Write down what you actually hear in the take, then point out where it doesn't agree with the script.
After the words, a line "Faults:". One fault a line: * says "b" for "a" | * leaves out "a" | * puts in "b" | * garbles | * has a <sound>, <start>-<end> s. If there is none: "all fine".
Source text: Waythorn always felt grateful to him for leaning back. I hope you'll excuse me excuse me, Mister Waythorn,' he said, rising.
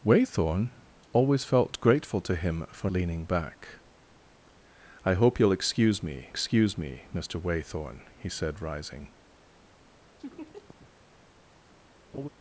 Waythorn always felt grateful to him for leaning back. I hope you'll excuse me excuse me, Mister Waythorn,' he said, rising.
Faults:
* has a laugh, 10.2-10.9 s
* has a laugh, 12.1-12.3 s